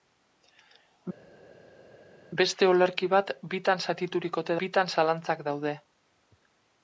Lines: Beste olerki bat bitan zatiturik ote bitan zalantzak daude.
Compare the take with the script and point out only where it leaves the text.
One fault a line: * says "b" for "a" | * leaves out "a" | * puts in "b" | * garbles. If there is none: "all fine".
all fine